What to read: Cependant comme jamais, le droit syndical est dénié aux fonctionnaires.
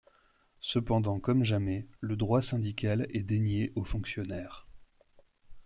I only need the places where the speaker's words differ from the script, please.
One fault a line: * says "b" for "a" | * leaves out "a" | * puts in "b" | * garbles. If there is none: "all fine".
all fine